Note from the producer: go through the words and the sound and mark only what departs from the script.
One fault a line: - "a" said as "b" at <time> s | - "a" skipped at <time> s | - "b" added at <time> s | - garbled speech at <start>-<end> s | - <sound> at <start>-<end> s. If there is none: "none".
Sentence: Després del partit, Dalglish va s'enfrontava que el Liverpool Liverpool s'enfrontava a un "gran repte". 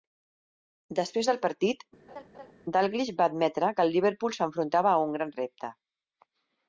- laugh at 2.1-2.5 s
- "s'enfrontava" said as "admetre" at 3.3 s
- "Liverpool" skipped at 4.4 s